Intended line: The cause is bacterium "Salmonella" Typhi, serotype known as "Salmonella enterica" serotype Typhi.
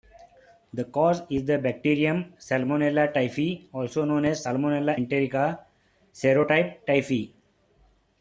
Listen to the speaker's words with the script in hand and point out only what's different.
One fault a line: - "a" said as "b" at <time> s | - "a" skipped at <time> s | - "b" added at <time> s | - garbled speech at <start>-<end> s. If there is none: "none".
- "the" added at 1.4 s
- "serotype" said as "also" at 3.7 s